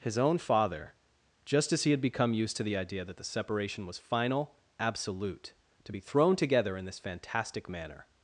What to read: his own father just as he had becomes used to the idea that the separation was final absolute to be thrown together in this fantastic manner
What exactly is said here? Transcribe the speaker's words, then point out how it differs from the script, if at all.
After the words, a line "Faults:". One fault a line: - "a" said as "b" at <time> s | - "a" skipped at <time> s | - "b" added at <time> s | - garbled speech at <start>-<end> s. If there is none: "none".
his own father just as he had become used to the idea that the separation was final absolute to be thrown together in this fantastic manner
Faults:
- "becomes" said as "become" at 2.0 s